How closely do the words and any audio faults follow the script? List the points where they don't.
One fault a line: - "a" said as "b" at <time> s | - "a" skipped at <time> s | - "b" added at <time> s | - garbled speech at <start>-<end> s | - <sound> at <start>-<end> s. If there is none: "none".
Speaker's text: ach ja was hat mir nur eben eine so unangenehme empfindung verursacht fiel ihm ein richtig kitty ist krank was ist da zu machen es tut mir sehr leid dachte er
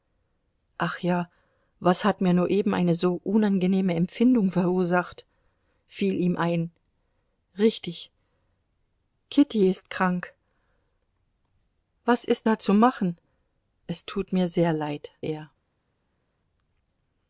- "dachte" skipped at 15.1 s